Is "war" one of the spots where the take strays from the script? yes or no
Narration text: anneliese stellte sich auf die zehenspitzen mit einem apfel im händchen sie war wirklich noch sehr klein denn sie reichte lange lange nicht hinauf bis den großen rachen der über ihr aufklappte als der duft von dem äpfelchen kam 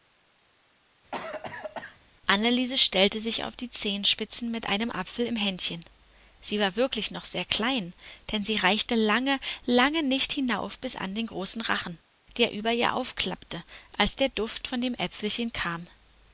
no